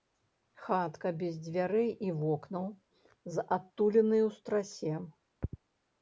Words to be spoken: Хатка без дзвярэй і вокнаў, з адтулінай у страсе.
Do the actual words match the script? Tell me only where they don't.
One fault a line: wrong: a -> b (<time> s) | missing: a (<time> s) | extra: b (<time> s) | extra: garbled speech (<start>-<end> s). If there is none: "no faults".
no faults